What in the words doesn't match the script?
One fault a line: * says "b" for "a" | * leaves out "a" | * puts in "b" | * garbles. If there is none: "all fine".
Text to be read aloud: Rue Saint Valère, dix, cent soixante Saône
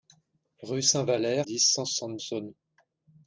all fine